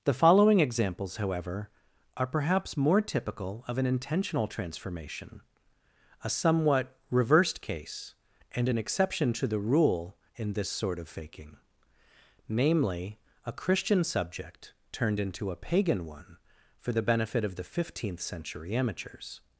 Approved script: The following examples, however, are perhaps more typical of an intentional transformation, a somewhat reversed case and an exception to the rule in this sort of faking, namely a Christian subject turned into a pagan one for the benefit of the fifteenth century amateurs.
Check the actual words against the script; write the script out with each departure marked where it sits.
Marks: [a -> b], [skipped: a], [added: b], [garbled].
The following examples, however, are perhaps more typical of an intentional transformation, a somewhat reversed case and an exception to the rule in this sort of faking, namely a Christian subject turned into a pagan one for the benefit of the fifteenth century amateurs.